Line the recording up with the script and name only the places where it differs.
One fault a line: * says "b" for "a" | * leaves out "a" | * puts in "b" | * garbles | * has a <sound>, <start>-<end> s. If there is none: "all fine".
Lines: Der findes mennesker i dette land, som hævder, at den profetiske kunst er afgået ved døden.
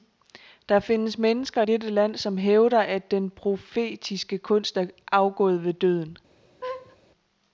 * leaves out "i"
* has a laugh, 6.6-7.0 s